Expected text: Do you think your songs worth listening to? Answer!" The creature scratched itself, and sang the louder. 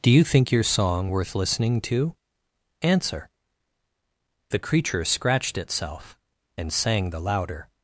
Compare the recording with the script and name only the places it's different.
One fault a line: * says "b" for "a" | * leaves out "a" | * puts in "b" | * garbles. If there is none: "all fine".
* says "song" for "songs"